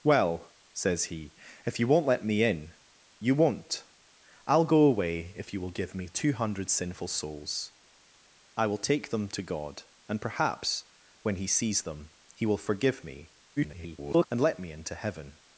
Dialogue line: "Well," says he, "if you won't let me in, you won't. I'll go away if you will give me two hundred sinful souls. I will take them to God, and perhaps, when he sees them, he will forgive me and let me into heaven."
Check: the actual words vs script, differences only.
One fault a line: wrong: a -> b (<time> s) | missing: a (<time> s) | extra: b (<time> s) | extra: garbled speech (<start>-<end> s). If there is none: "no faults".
extra: garbled speech (13.6-14.3 s)